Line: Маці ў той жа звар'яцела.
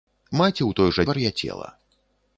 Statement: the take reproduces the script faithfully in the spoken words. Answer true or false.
true